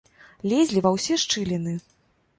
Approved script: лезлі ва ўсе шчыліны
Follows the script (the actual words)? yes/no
yes